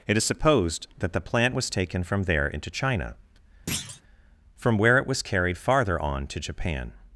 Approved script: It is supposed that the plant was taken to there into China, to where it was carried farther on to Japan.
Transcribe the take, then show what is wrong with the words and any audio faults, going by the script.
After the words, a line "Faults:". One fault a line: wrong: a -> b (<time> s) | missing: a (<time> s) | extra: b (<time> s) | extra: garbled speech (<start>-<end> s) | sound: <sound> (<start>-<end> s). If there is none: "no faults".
It is supposed that the plant was taken from there into China, from where it was carried farther on to Japan.
Faults:
wrong: to -> from (2.0 s)
sound: thud (3.7-4.0 s)
wrong: to -> from (4.5 s)